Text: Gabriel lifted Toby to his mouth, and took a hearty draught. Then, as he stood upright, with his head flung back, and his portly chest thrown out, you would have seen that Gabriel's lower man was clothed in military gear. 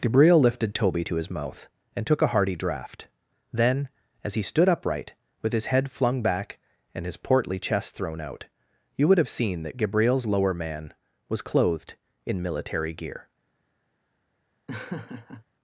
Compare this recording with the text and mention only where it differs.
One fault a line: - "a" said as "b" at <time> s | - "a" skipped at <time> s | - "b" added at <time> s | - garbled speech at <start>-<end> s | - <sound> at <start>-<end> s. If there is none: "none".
- laugh at 14.7-15.4 s